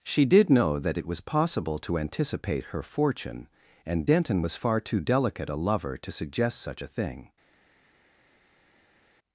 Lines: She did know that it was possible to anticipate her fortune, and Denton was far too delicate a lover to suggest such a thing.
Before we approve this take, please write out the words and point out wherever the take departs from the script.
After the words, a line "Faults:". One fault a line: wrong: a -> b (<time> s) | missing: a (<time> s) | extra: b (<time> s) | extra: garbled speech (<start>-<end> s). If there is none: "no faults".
She did know that it was possible to anticipate her fortune, and Denton was far too delicate a lover to suggest such a thing.
Faults:
no faults